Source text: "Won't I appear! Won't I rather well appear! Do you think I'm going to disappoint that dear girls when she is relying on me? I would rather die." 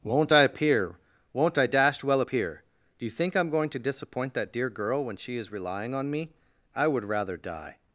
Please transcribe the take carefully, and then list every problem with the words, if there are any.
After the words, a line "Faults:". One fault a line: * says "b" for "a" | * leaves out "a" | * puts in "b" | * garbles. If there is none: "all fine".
"Won't I appear! Won't I dashed well appear! Do you think I'm going to disappoint that dear girl when she is relying on me? I would rather die."
Faults:
* says "dashed" for "rather"
* says "girl" for "girls"